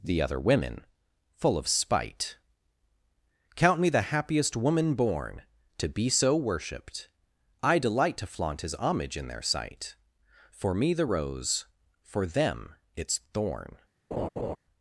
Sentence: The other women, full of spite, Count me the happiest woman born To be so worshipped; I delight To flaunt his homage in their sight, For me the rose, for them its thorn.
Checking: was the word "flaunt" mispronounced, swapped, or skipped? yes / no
no